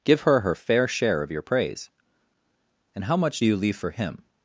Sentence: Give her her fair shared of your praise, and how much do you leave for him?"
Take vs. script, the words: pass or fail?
fail